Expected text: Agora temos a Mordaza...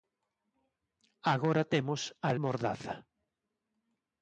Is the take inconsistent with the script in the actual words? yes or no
no